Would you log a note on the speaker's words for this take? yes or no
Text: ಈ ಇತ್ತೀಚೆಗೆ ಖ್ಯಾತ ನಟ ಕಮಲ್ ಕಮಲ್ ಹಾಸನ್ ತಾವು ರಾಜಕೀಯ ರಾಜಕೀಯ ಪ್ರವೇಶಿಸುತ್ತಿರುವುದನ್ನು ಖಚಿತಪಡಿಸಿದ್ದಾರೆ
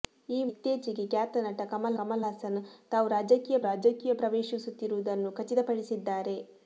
no